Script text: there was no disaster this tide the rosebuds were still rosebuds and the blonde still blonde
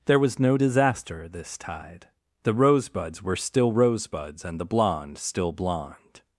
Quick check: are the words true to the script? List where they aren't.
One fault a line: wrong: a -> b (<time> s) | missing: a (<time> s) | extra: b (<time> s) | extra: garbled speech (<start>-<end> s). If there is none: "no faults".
no faults